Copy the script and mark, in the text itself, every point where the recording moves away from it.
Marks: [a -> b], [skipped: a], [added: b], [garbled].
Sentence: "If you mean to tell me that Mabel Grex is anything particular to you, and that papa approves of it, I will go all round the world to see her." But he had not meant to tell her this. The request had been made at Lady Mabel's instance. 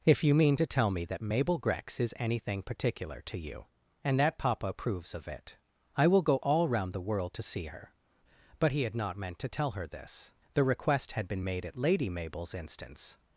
"If you mean to tell me that Mabel Grex is anything particular to you, and that papa approves of it, I will go all round the world to see her." But he had not meant to tell her this. The request had been made at Lady Mabel's instance.